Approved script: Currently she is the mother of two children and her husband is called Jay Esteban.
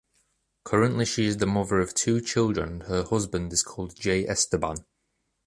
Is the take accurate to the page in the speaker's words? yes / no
yes